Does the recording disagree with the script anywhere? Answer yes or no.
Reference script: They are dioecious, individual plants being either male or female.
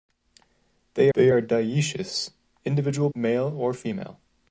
yes